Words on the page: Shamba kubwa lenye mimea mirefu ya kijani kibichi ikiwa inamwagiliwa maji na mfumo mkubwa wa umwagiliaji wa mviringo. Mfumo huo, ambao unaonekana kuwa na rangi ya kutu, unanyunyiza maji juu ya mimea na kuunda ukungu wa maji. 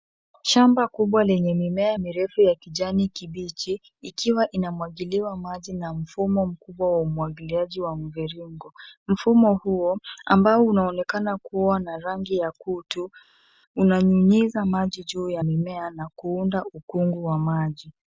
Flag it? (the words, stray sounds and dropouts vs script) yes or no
no